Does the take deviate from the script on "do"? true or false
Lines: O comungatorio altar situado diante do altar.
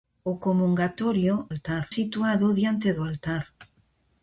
false